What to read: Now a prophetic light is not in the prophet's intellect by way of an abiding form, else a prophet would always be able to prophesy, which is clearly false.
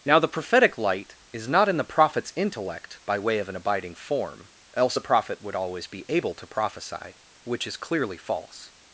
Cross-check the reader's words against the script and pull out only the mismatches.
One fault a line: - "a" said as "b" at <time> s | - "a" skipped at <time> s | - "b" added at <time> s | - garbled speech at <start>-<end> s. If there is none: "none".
- "a" said as "the" at 0.2 s